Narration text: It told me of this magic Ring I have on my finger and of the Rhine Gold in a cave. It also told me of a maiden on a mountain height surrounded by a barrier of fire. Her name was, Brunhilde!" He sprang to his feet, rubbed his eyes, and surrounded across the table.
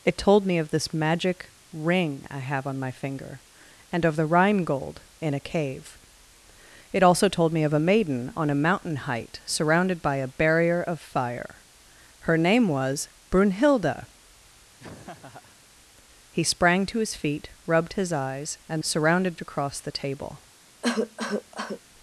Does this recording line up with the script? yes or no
yes